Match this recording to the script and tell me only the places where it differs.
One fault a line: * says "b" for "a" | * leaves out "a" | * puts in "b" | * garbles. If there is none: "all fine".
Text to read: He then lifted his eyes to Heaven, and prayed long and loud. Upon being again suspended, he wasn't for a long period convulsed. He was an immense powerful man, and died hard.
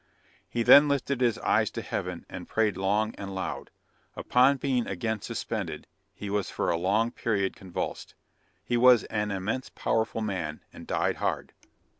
* says "was" for "wasn't"